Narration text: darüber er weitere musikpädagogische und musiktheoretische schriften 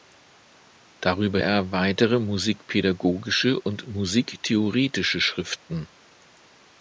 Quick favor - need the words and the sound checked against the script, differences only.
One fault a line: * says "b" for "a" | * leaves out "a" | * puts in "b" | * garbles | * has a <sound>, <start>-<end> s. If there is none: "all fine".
* has a dropout, 3.6-3.7 s